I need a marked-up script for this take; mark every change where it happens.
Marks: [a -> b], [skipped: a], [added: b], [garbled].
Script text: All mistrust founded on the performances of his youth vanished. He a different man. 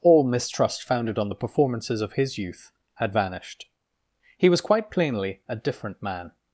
All mistrust founded on the performances of his youth [added: had] vanished. He [added: was quite plainly] a different man.